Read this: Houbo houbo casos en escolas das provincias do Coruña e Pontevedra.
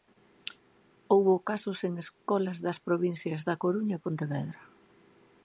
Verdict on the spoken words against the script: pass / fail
fail